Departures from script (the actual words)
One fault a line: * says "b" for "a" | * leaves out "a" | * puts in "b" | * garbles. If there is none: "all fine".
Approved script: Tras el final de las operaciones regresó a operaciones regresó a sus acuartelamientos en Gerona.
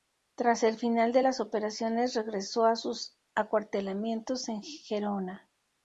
* leaves out "operaciones regresó a"